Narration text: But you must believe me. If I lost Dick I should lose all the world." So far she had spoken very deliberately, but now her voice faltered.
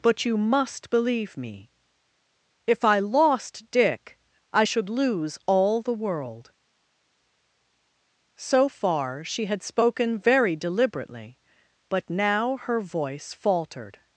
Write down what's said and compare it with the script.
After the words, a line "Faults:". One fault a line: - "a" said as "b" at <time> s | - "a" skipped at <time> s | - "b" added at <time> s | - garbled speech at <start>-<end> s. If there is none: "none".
But you must believe me. If I lost Dick I should lose all the world." So far she had spoken very deliberately, but now her voice faltered.
Faults:
none